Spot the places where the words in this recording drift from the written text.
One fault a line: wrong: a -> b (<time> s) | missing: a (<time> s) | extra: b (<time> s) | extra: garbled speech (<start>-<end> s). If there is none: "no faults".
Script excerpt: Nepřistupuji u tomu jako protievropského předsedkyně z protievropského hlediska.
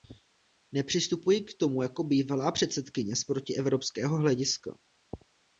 wrong: u -> k (1.4 s)
wrong: protievropského -> bývalá (2.0 s)